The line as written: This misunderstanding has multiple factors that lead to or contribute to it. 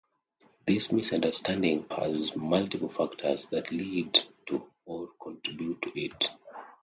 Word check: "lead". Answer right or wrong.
right